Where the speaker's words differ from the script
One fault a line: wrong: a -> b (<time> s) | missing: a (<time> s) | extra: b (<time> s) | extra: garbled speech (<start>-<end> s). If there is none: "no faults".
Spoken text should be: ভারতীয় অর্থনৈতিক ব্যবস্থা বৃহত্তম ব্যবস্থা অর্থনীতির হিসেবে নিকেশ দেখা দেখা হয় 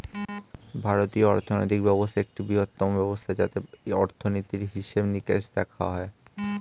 extra: একটি (2.2 s)
extra: যাতে (3.4 s)
missing: দেখা (5.8 s)